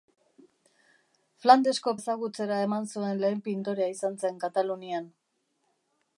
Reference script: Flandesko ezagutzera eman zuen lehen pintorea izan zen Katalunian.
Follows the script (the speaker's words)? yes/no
yes